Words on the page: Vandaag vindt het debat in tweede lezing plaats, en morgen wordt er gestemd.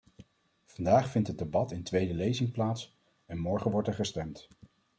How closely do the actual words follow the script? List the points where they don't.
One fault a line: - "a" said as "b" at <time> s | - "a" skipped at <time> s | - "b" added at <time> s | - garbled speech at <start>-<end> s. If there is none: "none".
none